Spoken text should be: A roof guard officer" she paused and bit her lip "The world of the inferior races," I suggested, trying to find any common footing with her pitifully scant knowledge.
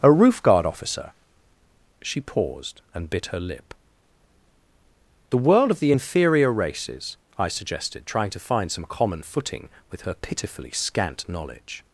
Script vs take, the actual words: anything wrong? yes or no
yes